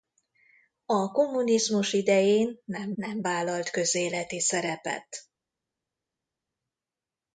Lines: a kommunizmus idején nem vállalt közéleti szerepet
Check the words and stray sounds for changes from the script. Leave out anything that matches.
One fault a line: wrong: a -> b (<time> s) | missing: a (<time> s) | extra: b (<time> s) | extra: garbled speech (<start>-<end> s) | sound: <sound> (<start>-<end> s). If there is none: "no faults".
extra: nem (2.9 s)